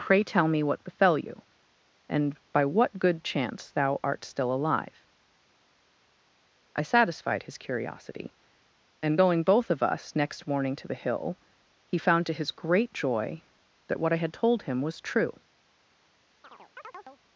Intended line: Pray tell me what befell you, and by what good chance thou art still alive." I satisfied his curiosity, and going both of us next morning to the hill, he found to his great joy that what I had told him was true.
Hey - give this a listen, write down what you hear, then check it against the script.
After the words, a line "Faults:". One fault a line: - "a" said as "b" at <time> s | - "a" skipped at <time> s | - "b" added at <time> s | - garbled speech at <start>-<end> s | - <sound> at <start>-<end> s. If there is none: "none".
Pray tell me what befell you, and by what good chance thou art still alive." I satisfied his curiosity, and going both of us next morning to the hill, he found to his great joy that what I had told him was true.
Faults:
- chirp at 16.4-17.2 s